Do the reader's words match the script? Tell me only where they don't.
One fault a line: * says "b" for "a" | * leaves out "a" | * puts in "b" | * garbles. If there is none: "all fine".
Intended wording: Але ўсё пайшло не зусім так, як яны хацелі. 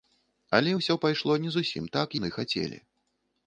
* leaves out "як"